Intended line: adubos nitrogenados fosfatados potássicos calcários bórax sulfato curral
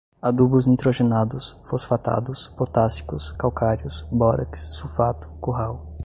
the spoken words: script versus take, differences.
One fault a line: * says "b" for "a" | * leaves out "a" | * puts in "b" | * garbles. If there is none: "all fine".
all fine